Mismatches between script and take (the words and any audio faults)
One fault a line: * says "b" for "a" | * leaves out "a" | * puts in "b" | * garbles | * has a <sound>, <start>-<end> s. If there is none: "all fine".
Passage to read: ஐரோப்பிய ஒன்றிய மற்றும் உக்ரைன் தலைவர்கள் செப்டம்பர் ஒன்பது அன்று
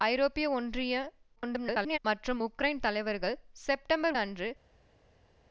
* garbles
* leaves out "ஒன்பது"